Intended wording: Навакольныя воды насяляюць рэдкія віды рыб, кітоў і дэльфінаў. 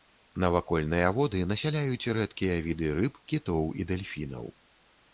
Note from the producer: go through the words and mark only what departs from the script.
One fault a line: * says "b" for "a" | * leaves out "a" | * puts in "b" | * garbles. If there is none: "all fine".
all fine